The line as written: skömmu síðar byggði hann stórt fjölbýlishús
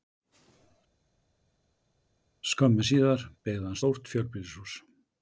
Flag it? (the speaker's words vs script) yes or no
no